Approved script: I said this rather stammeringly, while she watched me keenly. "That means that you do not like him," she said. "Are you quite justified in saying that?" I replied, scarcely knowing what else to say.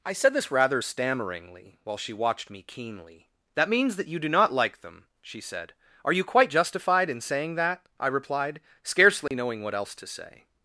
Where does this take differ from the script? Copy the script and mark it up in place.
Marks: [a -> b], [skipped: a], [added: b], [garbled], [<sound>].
I said this rather stammeringly, while she watched me keenly. "That means that you do not like [him," -> them] she said. "Are you quite justified in saying that?" I replied, scarcely [dropout] knowing what else to say.